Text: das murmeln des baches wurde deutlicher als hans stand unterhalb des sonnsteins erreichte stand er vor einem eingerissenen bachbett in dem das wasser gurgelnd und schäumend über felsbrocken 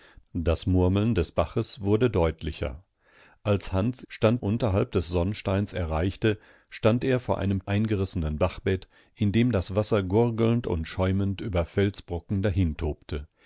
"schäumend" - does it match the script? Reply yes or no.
yes